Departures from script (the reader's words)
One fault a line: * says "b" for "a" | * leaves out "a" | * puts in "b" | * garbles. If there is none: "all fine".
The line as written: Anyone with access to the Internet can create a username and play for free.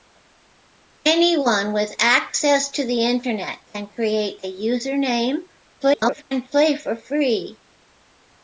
* garbles